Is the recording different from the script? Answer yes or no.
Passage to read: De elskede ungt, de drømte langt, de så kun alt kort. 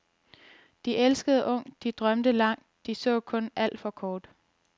yes